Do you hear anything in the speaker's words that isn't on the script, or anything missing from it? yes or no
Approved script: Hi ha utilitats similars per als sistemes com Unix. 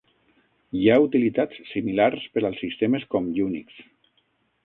no